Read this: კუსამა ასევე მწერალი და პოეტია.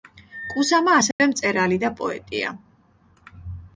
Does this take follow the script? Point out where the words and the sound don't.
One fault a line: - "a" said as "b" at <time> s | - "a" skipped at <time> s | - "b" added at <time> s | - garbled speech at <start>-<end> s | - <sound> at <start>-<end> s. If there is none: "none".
- dropout at 1.1-1.2 s